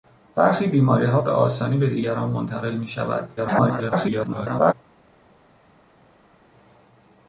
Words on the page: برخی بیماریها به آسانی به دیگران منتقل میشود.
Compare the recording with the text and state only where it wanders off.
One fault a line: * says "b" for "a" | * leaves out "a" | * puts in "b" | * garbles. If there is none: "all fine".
* garbles